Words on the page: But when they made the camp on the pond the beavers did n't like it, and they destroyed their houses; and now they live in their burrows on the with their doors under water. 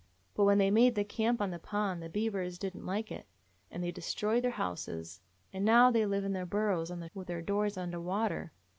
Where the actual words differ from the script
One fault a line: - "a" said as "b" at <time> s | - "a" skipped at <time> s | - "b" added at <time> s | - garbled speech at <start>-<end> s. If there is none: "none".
none